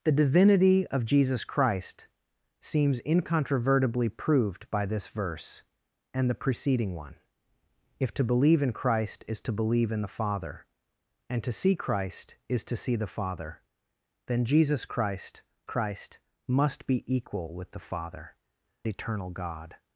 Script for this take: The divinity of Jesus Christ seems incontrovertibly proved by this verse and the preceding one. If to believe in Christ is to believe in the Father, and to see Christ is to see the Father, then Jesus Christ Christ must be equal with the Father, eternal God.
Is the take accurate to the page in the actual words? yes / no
yes